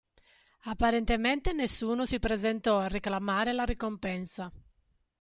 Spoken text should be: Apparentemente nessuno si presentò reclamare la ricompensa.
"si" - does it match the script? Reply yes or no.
yes